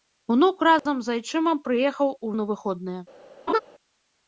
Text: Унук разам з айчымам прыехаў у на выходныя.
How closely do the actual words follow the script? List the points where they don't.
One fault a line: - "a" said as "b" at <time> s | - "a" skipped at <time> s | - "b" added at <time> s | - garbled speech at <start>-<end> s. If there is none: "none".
none